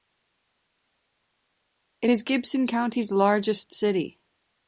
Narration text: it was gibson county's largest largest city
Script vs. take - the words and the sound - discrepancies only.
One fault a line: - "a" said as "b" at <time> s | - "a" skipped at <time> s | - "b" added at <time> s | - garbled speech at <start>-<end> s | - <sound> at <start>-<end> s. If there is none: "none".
- "was" said as "is" at 2.1 s
- "largest" skipped at 3.7 s